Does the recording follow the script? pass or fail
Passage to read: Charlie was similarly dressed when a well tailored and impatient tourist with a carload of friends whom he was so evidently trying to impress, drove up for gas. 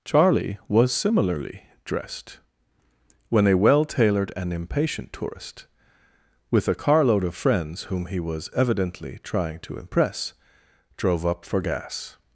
fail